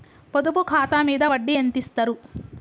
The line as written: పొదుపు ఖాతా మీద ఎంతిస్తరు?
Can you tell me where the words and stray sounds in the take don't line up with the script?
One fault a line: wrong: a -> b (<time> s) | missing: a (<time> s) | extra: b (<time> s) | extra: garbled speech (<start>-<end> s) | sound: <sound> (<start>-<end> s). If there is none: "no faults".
extra: వడ్డీ (1.3 s)